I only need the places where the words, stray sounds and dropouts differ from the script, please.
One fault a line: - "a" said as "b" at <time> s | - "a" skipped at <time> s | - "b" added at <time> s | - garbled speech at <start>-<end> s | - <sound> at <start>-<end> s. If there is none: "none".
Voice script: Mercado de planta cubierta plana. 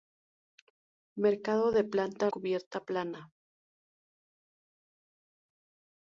none